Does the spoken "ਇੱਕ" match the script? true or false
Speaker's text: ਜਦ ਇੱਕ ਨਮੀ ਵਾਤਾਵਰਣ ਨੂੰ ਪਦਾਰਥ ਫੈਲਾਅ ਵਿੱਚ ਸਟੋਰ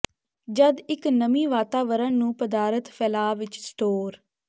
true